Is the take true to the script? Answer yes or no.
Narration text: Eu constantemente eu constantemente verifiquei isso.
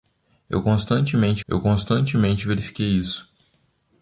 yes